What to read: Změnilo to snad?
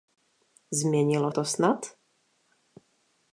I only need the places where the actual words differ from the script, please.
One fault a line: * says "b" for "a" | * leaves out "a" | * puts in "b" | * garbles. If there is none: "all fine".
all fine